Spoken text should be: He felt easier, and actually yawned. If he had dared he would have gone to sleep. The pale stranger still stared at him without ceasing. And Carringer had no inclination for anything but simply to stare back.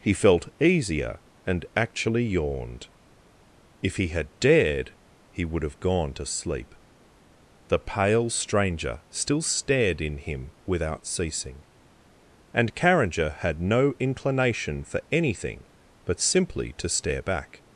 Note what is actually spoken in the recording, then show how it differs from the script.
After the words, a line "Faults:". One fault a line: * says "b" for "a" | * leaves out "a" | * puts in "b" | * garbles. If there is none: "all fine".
He felt easier, and actually yawned. If he had dared he would have gone to sleep. The pale stranger still stared in him without ceasing. And Carringer had no inclination for anything but simply to stare back.
Faults:
* says "in" for "at"